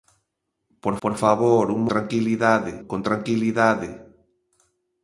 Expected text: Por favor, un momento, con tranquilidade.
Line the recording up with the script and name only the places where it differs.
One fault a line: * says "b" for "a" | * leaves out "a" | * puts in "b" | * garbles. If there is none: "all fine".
* puts in "por"
* says "tranquilidade" for "momento"